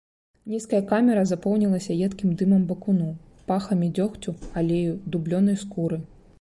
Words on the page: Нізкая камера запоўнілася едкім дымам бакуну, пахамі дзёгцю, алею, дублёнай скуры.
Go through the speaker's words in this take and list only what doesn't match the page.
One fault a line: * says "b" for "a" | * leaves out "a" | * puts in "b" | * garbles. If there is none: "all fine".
all fine